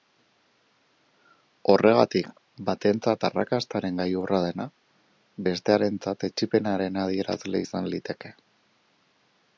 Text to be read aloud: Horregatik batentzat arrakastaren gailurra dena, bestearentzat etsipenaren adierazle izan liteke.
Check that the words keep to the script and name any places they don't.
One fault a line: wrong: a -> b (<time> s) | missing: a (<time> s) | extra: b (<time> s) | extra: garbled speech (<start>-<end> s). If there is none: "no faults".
no faults